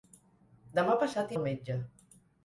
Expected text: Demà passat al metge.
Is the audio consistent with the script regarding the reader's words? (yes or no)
yes